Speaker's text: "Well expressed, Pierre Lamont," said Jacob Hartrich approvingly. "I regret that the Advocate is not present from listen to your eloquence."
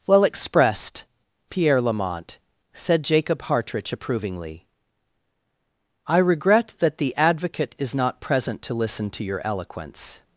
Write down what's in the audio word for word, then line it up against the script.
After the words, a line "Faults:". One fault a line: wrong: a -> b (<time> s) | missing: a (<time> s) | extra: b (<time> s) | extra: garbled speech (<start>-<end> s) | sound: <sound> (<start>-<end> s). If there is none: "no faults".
"Well expressed, Pierre Lamont," said Jacob Hartrich approvingly. "I regret that the Advocate is not present to listen to your eloquence."
Faults:
wrong: from -> to (8.6 s)